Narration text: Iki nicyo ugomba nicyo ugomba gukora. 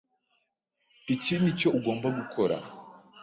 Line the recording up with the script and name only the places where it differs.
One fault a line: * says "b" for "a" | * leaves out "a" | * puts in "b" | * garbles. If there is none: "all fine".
* leaves out "nicyo ugomba"